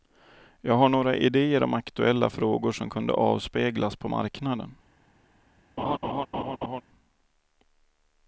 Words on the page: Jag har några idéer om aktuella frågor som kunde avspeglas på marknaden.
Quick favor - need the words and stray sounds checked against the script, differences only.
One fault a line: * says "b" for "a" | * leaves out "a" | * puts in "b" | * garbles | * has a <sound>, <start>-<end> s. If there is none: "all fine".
* has a laugh, 5.8-6.8 s